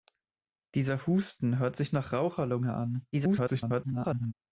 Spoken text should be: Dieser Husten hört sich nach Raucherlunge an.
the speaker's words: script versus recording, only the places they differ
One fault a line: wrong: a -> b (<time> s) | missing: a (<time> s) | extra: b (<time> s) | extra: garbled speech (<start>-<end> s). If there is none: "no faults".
extra: garbled speech (3.1-4.3 s)